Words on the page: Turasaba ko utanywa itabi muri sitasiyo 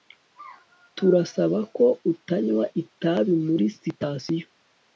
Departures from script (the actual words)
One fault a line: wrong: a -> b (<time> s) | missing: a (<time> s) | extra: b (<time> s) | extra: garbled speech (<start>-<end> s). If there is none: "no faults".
no faults